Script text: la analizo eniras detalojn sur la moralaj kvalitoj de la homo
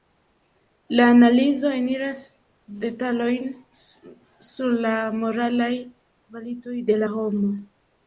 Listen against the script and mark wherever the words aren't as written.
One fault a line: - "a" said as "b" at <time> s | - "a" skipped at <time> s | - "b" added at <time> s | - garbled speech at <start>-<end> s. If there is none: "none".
none